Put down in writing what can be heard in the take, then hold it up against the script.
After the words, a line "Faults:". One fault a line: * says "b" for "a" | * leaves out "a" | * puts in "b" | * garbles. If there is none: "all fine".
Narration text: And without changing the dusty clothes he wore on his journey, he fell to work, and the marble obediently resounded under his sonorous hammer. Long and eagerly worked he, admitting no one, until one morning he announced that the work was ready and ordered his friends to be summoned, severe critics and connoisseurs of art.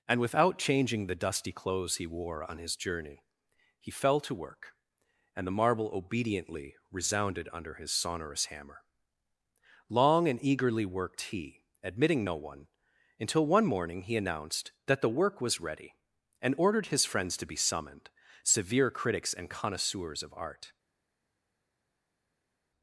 And without changing the dusty clothes he wore on his journey, he fell to work, and the marble obediently resounded under his sonorous hammer. Long and eagerly worked he, admitting no one, until one morning he announced that the work was ready and ordered his friends to be summoned, severe critics and connoisseurs of art.
Faults:
all fine